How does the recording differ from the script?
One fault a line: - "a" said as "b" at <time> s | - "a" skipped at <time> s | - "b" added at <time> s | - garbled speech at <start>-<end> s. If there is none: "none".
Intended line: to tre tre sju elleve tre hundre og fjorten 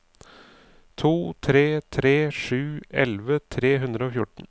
none